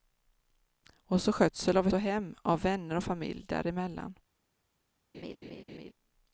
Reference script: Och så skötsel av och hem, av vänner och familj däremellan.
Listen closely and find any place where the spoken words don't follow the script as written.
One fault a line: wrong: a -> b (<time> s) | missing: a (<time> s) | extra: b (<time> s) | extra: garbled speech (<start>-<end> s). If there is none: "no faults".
no faults